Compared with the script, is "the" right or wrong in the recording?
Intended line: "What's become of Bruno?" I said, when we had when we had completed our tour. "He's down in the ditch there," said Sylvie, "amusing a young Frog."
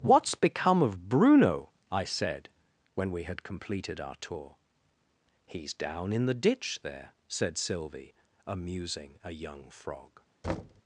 right